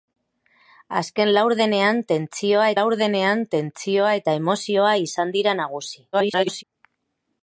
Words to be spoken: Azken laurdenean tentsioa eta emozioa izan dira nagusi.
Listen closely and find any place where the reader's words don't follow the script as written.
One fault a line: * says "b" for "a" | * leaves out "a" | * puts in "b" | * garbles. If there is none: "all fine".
* puts in "laurdenean tentsioa"
* garbles